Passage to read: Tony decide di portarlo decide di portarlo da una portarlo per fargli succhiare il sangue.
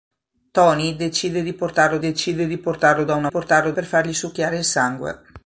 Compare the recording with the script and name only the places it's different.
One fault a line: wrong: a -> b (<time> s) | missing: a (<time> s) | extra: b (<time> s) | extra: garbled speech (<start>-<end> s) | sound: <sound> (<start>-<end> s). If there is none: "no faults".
no faults